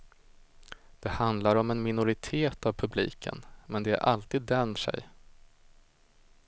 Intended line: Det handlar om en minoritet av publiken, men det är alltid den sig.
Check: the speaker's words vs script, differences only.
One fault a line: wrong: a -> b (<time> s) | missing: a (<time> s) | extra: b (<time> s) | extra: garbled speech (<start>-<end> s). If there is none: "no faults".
no faults